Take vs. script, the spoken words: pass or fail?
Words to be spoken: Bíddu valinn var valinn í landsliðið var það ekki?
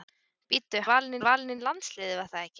pass